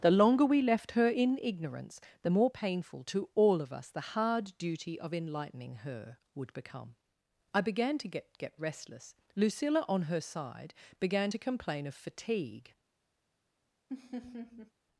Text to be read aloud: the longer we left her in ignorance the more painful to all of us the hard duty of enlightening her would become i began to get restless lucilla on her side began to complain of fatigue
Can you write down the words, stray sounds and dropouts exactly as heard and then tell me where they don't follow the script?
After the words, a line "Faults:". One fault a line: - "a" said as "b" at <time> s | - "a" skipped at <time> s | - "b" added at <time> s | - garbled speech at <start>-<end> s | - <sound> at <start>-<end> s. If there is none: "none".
the longer we left her in ignorance the more painful to all of us the hard duty of enlightening her would become i began to get get restless lucilla on her side began to complain of fatigue
Faults:
- "get" added at 8.4 s
- laugh at 13.9-14.7 s